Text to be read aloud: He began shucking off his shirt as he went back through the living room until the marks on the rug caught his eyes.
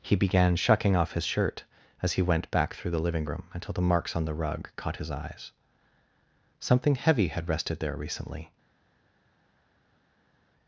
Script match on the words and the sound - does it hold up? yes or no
no